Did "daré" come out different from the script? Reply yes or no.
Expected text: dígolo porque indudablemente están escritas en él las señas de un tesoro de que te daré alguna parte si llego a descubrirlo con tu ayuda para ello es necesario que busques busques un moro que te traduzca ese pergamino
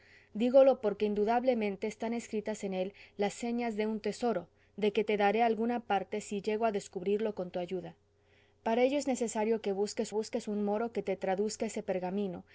no